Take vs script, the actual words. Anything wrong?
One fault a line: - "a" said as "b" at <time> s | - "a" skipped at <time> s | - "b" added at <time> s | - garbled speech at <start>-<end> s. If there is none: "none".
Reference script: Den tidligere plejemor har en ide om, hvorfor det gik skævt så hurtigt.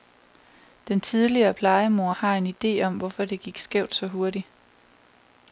none